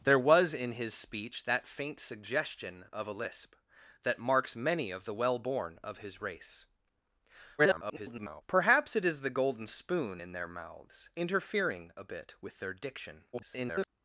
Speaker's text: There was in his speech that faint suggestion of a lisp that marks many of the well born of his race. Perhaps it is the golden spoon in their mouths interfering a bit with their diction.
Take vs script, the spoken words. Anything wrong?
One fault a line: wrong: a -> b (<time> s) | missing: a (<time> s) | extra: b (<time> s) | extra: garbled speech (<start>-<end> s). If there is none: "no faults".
extra: garbled speech (7.6-8.4 s)
extra: garbled speech (13.3-13.9 s)